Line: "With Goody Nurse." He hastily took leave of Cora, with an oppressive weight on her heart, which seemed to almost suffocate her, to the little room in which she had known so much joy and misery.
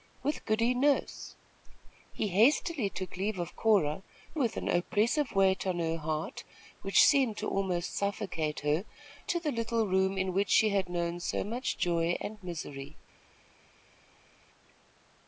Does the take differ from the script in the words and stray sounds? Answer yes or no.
no